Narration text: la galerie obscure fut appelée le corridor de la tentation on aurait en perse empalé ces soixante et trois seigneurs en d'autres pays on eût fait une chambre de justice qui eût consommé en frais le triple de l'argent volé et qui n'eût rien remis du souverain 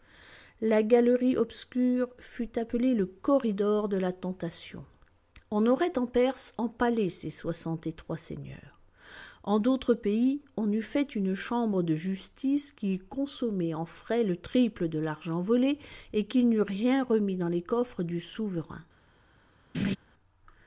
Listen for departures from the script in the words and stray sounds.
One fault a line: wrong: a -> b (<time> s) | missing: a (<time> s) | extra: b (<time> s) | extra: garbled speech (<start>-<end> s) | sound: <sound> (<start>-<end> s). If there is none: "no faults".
extra: dans les coffres (17.4 s)
sound: laugh (19.7-20.0 s)